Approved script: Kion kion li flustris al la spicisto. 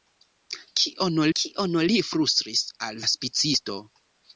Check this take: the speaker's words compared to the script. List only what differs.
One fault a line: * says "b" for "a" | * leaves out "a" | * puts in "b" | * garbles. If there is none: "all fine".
all fine